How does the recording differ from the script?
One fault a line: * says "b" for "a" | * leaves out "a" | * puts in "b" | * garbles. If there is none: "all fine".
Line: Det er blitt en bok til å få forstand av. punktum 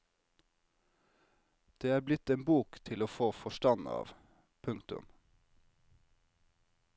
all fine